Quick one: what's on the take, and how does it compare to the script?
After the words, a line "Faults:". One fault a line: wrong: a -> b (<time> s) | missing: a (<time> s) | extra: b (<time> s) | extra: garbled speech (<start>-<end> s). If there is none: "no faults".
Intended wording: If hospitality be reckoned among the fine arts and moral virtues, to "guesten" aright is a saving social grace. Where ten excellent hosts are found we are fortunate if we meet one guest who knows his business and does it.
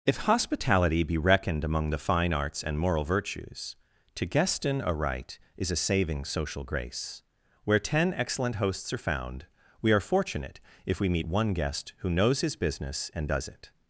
If hospitality be reckoned among the fine arts and moral virtues, to "guesten" aright is a saving social grace. Where ten excellent hosts are found we are fortunate if we meet one guest who knows his business and does it.
Faults:
no faults